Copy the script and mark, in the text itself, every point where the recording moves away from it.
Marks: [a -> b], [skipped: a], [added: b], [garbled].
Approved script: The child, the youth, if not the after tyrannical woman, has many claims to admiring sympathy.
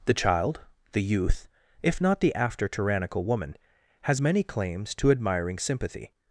The child, the youth, if not the after tyrannical woman, has many claims to admiring sympathy.